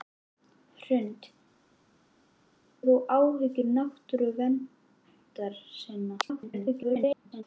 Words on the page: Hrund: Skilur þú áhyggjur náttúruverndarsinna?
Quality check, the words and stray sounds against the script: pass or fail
fail